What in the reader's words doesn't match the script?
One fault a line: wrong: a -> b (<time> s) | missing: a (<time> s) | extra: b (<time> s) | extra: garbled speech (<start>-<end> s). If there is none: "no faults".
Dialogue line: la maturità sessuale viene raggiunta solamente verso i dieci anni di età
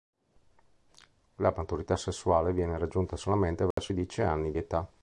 missing: di (4.5 s)